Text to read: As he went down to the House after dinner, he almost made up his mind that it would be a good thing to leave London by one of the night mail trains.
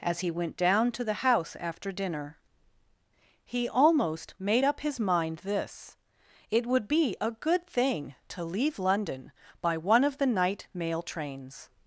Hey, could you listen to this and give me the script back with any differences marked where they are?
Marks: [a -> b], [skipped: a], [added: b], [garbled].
As he went down to the House after dinner, he almost made up his mind [that -> this] it would be a good thing to leave London by one of the night mail trains.